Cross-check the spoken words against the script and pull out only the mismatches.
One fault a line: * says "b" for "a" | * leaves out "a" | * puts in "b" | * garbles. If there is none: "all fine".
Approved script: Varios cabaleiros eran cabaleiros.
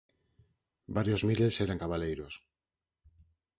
* says "miles" for "cabaleiros"